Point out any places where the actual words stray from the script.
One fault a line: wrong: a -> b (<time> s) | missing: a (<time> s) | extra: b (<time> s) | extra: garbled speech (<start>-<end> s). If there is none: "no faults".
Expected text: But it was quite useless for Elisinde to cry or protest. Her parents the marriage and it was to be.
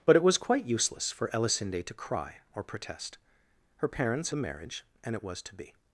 no faults